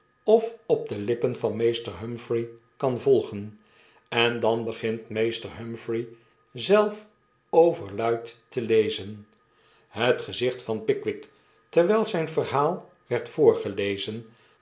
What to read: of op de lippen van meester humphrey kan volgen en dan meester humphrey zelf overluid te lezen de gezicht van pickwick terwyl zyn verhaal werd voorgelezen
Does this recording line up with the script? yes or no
no